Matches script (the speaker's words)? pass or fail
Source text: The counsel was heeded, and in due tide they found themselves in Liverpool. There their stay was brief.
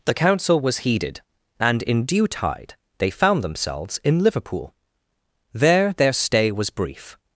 pass